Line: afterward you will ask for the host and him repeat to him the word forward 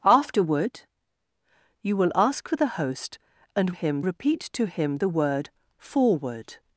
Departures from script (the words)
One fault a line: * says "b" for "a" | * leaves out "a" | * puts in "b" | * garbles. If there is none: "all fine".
all fine